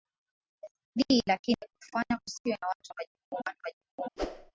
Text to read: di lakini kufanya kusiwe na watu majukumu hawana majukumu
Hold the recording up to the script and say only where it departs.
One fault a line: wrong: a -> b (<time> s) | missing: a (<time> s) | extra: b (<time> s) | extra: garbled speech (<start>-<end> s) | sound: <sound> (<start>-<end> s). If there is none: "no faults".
sound: whoosh (4.2-4.5 s)